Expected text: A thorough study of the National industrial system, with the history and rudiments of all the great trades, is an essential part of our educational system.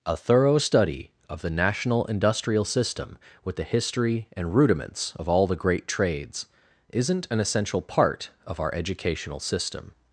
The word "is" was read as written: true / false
false